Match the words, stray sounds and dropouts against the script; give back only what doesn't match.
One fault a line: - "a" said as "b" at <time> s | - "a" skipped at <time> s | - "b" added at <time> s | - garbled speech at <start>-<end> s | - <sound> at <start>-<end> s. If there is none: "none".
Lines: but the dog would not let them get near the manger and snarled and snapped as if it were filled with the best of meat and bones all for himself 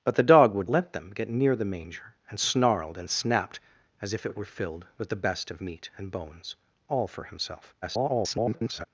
- "not" skipped at 0.7 s
- garbled speech at 7.8-8.8 s